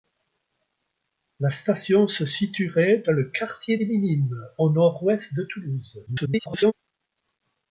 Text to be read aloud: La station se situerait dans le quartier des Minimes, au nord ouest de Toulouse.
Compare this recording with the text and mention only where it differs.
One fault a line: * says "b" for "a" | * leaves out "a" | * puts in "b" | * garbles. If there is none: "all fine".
* garbles